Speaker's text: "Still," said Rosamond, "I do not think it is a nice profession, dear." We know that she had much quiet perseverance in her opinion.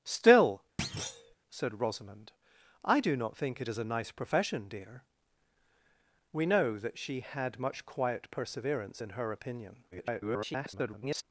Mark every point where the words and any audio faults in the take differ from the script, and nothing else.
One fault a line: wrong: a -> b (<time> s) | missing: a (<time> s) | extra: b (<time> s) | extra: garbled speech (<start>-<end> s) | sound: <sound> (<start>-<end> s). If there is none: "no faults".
sound: thud (0.8-1.3 s)
extra: garbled speech (9.9-11.2 s)